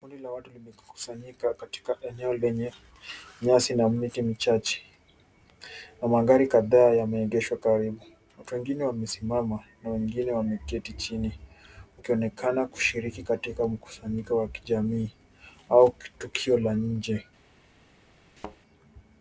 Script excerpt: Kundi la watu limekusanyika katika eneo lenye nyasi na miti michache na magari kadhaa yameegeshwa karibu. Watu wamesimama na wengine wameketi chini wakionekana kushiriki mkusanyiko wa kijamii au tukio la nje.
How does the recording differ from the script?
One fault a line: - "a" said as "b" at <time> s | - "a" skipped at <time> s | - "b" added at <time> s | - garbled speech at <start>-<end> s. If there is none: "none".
- "wengine" added at 8.5 s
- "katika" added at 13.2 s